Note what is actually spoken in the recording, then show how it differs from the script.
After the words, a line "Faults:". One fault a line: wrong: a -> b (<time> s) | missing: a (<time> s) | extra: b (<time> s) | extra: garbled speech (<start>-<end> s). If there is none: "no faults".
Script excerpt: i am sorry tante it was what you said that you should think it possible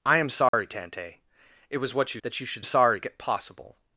i am sorry tante it was what you that you should sorry it possible
Faults:
missing: said (2.2 s)
wrong: think -> sorry (2.6 s)